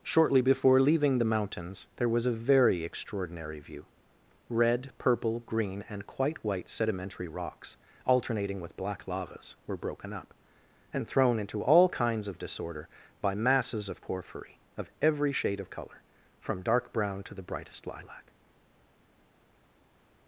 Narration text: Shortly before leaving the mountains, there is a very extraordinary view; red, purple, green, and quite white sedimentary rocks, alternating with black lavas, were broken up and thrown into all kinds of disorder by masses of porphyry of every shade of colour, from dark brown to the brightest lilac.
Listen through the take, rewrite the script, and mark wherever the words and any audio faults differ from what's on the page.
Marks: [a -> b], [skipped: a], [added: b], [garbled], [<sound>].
Shortly before leaving the mountains, there [is -> was] a very extraordinary view; red, purple, green, and quite white sedimentary rocks, alternating with black lavas, were broken up and thrown into all kinds of disorder by masses of porphyry of every shade of colour, from dark brown to the brightest lilac.